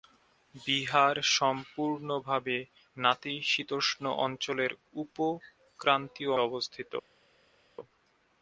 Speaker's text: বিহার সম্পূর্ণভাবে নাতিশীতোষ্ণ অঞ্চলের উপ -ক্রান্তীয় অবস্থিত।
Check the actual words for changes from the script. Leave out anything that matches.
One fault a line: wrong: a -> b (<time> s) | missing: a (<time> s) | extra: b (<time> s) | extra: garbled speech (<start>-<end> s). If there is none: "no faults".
no faults